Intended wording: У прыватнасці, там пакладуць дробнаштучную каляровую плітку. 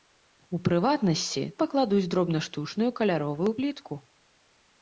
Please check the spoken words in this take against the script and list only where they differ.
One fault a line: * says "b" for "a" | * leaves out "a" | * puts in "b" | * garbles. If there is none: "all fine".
* leaves out "там"